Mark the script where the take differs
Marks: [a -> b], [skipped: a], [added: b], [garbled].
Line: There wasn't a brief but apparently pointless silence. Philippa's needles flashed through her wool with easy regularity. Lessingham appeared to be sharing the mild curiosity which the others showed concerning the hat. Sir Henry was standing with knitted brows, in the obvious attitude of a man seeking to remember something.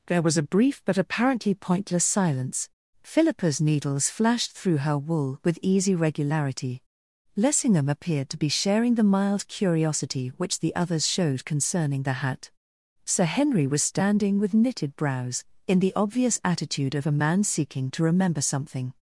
There [wasn't -> was] a brief but apparently pointless silence. Philippa's needles flashed through her wool with easy regularity. Lessingham appeared to be sharing the mild curiosity which the others showed concerning the hat. Sir Henry was standing with knitted brows, in the obvious attitude of a man seeking to remember something.